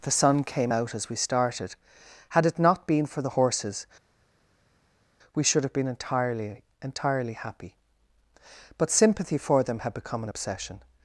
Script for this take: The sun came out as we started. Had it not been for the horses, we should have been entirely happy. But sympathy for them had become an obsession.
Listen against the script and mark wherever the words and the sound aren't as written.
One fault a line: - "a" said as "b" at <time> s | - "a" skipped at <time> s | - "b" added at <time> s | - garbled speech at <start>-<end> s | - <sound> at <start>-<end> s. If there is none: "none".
- "entirely" added at 6.8 s